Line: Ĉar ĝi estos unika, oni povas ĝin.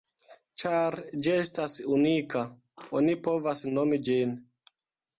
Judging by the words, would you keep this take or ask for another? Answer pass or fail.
fail